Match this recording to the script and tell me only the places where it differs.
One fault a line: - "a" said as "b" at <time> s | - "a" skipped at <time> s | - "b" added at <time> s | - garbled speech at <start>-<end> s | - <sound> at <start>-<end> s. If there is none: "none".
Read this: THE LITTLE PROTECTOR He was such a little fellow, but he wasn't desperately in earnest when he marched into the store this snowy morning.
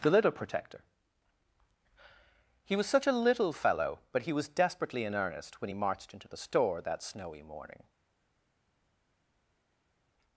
- "wasn't" said as "was" at 4.3 s
- "this" said as "that" at 6.8 s